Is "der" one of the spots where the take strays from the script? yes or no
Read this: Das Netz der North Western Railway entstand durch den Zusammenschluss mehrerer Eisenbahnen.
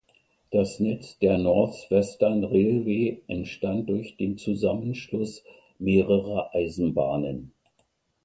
no